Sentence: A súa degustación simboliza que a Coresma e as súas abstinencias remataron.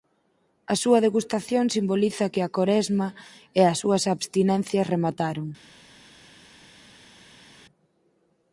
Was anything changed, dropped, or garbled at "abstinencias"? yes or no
no